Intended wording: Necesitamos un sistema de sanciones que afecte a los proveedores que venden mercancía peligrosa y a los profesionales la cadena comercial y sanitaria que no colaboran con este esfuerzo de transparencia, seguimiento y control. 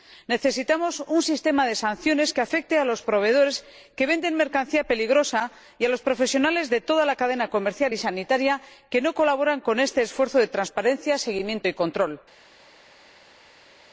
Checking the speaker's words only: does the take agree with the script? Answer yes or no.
no